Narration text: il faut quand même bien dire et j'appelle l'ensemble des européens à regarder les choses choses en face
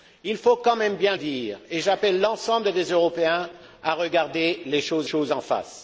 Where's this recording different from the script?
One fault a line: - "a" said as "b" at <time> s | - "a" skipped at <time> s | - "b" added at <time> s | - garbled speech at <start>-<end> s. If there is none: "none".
none